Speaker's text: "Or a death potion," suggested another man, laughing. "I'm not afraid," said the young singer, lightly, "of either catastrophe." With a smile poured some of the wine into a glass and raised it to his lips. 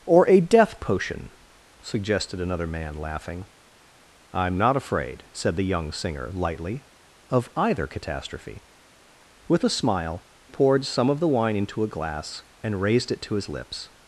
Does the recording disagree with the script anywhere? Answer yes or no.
no